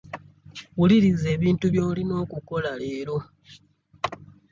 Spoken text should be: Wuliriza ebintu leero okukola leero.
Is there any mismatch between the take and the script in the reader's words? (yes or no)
yes